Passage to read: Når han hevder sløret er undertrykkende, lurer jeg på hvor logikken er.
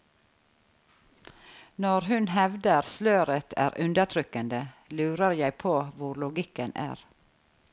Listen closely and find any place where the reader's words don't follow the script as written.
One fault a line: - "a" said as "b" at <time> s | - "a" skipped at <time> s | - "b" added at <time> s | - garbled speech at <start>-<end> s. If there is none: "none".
- "han" said as "hun" at 2.1 s